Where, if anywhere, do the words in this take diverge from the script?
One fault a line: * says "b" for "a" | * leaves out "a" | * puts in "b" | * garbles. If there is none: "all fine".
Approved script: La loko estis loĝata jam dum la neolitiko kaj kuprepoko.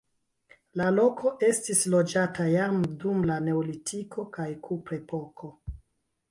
all fine